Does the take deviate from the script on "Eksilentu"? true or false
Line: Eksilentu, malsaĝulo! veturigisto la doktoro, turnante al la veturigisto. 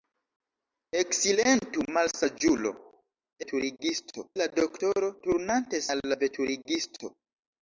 false